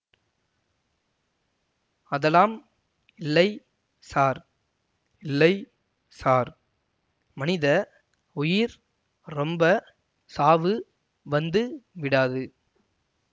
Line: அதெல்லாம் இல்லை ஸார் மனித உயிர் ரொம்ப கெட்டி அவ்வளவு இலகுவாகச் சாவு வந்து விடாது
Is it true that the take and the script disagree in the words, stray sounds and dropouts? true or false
true